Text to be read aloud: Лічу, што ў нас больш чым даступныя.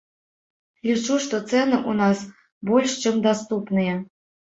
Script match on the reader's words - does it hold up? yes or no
no